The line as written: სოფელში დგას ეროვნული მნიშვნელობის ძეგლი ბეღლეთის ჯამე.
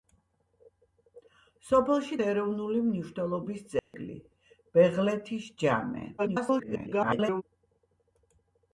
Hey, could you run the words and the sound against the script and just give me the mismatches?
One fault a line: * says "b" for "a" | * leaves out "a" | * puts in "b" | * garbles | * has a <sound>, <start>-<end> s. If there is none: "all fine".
* leaves out "დგას"
* has a dropout, 3.8-3.9 s
* garbles